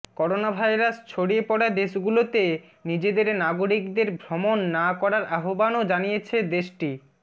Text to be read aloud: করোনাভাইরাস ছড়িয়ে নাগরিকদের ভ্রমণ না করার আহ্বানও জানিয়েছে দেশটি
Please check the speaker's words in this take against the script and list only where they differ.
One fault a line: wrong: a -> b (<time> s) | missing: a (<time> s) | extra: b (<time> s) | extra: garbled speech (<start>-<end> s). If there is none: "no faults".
extra: পড়া দেশগুলোতে নিজেদের (1.4 s)